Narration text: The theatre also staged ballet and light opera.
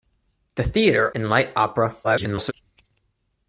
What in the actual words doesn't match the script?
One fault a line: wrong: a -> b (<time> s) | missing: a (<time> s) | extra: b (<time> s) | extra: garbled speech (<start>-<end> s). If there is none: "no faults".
missing: also staged ballet (1.1 s)
extra: garbled speech (2.0-2.5 s)